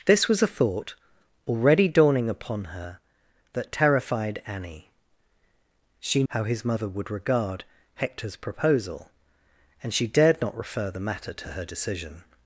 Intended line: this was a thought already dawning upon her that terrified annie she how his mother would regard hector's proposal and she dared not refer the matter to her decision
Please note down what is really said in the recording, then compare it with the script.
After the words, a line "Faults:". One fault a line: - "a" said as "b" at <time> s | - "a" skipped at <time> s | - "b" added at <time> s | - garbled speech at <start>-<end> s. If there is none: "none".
this was a thought already dawning upon her that terrified annie she how his mother would regard hector's proposal and she dared not refer the matter to her decision
Faults:
none